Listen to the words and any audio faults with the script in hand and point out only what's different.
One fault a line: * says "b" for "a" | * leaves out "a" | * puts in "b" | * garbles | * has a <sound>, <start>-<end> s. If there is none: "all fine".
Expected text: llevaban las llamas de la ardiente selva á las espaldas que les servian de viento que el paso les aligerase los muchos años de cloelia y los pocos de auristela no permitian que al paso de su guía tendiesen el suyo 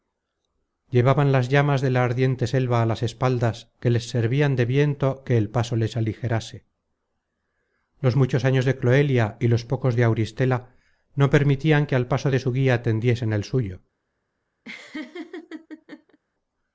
* has a laugh, 14.6-16.2 s